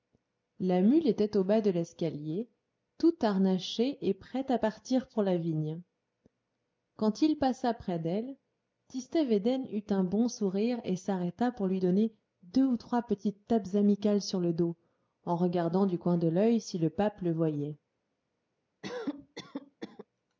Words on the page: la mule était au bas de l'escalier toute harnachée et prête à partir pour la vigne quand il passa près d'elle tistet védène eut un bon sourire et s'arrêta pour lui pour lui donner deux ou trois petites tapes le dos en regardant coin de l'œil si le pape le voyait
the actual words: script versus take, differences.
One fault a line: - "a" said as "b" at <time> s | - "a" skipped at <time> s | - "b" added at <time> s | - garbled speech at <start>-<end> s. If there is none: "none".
- "pour lui" skipped at 11.8 s
- "amicales sur" added at 13.7 s
- "du" added at 15.9 s